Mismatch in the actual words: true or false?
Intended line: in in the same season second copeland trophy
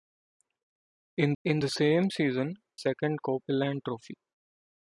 false